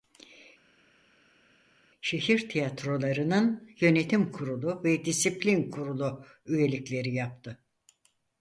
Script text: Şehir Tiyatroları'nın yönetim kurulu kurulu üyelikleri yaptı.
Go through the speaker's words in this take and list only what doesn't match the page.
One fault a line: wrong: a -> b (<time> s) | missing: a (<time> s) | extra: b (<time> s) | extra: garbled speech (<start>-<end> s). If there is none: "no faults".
extra: ve disiplin (4.8 s)